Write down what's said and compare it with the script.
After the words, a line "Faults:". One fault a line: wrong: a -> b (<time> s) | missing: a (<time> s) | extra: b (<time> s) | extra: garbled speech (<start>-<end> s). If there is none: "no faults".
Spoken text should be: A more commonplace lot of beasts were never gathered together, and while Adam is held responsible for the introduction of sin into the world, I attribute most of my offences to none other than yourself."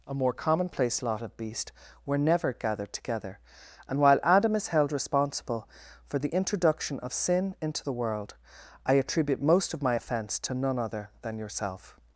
A more commonplace lot of beast were never gathered together, and while Adam is held responsible for the introduction of sin into the world, I attribute most of my offence to none other than yourself."
Faults:
wrong: beasts -> beast (1.4 s)
wrong: offences -> offence (9.9 s)